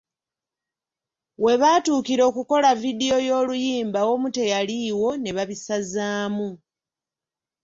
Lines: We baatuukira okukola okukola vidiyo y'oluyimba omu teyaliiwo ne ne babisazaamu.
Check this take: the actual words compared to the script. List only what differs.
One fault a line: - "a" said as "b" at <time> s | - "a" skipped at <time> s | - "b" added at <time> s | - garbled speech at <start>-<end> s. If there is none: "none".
- "okukola" skipped at 2.7 s
- "ne" skipped at 5.3 s